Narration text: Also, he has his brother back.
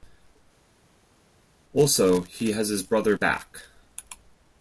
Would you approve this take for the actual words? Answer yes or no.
yes